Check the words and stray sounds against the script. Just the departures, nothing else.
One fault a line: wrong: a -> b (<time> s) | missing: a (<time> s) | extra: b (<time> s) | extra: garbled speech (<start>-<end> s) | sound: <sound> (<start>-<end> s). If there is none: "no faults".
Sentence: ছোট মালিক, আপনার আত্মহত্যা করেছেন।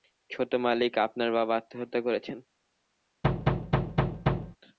extra: বাবা (1.3 s)
sound: thud (3.2-4.6 s)